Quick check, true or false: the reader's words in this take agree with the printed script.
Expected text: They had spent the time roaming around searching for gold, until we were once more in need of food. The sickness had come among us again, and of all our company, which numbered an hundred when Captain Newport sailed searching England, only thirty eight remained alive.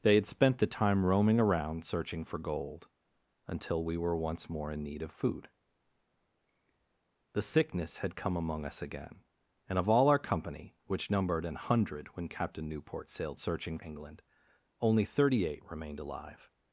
true